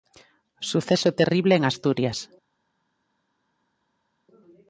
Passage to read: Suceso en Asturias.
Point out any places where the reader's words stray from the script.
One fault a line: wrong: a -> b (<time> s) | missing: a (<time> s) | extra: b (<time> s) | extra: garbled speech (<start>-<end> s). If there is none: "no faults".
extra: terrible (1.1 s)